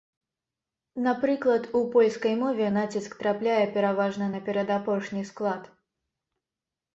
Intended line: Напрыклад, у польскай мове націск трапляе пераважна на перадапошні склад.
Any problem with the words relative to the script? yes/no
no